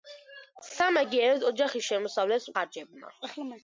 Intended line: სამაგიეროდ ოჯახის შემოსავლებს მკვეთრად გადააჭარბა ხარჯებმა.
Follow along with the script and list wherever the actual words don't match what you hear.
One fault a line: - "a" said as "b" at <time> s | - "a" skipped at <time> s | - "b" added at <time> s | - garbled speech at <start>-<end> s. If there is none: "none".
- "მკვეთრად გადააჭარბა" skipped at 2.5 s